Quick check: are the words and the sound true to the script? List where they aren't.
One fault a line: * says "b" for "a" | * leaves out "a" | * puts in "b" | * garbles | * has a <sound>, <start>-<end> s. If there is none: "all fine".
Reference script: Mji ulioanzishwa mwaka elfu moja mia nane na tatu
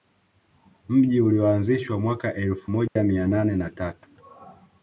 * has a dropout, 2.9-3.0 s